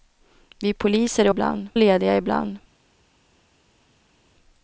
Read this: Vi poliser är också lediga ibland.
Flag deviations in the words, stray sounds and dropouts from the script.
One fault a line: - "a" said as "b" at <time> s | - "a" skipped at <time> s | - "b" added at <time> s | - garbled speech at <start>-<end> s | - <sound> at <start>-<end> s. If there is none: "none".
- "också" said as "ibland" at 1.3 s